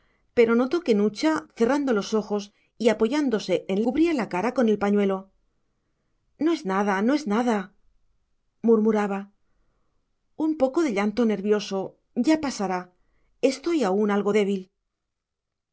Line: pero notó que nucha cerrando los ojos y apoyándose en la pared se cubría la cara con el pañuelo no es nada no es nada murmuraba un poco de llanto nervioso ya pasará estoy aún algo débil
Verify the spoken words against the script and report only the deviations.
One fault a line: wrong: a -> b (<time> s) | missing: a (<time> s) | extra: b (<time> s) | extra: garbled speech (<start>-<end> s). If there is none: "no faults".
missing: la pared se (3.8 s)